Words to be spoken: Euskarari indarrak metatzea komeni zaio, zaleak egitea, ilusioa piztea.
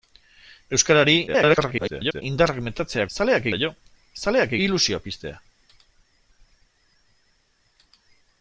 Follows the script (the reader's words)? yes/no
no